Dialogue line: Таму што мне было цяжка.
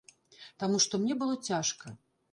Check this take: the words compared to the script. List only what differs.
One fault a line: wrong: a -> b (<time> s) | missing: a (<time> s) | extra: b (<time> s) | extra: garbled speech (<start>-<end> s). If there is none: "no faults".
no faults